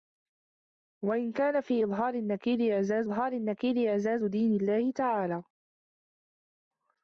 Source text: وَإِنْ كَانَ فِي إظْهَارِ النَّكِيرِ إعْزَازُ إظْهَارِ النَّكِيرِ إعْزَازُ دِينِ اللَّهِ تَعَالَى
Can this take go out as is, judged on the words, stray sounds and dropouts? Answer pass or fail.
pass